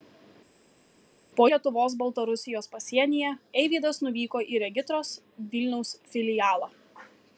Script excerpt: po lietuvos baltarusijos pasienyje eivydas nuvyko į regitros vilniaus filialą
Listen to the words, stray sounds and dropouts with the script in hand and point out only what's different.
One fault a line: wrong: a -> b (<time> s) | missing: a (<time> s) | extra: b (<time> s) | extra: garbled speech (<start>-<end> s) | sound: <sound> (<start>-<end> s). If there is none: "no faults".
no faults